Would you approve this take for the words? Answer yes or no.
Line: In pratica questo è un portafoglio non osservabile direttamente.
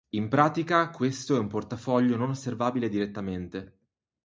yes